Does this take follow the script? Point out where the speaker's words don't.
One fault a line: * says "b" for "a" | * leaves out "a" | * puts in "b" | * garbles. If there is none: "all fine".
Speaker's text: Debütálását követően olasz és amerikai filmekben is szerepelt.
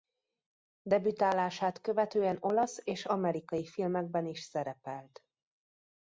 all fine